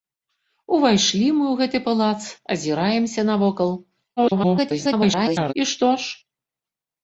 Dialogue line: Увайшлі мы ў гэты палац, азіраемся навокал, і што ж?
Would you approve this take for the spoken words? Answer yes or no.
no